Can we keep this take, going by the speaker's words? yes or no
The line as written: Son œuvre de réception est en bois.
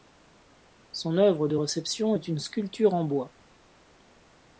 no